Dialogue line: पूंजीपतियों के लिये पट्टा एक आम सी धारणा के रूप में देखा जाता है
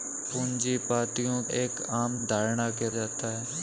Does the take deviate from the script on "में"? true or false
true